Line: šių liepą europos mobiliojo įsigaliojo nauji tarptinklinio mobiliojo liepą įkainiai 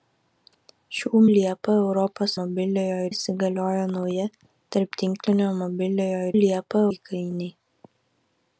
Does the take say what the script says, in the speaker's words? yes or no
yes